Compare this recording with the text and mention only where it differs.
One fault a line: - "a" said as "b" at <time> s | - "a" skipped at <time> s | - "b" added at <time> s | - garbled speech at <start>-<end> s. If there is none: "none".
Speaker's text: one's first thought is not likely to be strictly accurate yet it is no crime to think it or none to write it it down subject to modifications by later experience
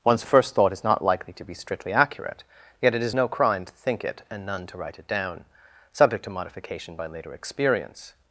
- "or" said as "and" at 4.3 s
- "it" skipped at 5.1 s
- "modifications" said as "modification" at 6.3 s